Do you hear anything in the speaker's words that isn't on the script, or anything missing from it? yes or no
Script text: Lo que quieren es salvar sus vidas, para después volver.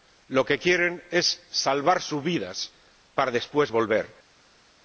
no